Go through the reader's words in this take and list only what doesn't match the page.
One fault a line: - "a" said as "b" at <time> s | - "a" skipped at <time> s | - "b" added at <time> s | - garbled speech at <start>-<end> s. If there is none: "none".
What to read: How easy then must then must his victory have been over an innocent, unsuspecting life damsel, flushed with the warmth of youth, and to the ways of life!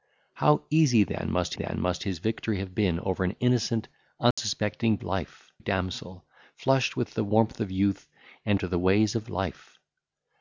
none